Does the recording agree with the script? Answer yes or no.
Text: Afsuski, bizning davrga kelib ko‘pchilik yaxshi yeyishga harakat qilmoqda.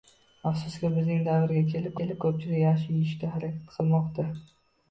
no